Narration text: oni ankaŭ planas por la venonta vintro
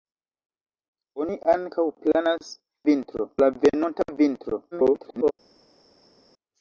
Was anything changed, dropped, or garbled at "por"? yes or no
yes